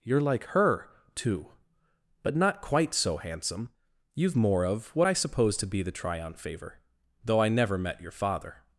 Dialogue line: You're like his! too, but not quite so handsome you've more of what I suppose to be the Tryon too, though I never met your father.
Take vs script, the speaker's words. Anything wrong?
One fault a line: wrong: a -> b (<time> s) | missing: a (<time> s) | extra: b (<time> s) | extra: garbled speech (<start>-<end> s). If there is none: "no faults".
wrong: his -> her (0.5 s)
wrong: too -> favor (6.3 s)